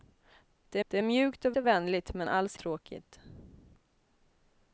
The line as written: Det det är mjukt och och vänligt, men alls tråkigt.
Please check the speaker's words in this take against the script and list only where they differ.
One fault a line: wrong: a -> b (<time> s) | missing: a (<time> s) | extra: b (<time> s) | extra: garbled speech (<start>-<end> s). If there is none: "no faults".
no faults